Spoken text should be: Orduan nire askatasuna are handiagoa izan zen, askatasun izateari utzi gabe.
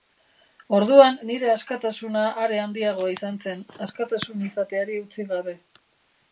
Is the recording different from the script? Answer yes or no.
no